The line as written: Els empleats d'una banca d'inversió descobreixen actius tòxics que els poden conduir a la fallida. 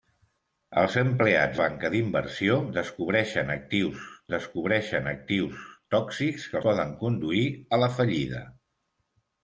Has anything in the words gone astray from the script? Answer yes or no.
yes